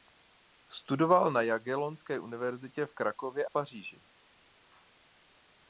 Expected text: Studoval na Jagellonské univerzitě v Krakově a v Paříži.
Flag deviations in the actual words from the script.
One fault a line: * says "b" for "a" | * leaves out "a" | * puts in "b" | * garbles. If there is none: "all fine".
* leaves out "a"